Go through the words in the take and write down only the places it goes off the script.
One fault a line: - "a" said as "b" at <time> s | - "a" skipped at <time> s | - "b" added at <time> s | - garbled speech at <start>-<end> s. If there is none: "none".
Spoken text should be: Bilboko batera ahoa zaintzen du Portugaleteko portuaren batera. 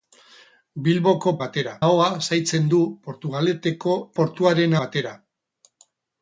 none